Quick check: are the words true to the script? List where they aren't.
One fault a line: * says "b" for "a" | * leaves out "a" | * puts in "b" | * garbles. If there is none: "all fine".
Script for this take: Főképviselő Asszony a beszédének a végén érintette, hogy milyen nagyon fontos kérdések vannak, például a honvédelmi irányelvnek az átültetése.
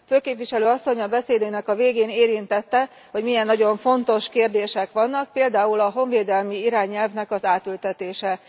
all fine